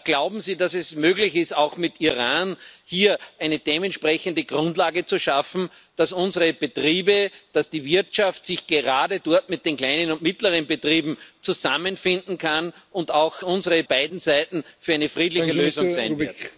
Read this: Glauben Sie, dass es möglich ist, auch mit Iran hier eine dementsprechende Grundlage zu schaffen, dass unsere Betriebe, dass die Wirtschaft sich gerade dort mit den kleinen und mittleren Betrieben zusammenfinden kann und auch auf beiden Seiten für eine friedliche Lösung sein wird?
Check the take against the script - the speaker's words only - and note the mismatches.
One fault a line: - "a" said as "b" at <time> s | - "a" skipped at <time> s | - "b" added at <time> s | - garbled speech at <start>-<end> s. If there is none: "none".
- "auf" said as "unsere" at 13.4 s